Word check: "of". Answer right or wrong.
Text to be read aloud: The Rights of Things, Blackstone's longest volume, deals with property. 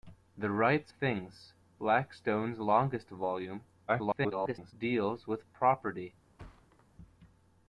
wrong